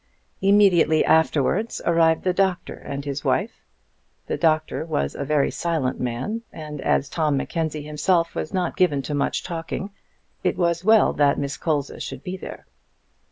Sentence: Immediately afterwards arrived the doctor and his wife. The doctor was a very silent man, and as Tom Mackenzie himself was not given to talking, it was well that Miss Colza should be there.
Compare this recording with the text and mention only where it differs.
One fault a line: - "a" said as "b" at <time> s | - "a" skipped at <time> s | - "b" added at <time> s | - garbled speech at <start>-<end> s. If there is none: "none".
- "much" added at 9.1 s